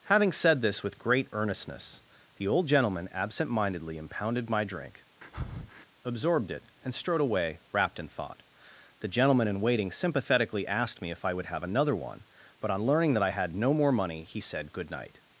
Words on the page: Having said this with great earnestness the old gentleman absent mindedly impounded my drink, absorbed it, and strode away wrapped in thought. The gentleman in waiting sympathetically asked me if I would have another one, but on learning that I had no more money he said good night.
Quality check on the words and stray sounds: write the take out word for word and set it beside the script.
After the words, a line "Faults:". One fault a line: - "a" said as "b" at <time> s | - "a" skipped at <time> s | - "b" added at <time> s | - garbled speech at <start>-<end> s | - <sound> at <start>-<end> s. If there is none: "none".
Having said this with great earnestness the old gentleman absent mindedly impounded my drink, absorbed it, and strode away wrapped in thought. The gentleman in waiting sympathetically asked me if I would have another one, but on learning that I had no more money he said good night.
Faults:
- breath at 5.2-5.9 s